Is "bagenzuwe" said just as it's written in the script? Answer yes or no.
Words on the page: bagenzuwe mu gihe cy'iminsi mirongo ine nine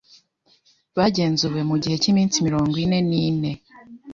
yes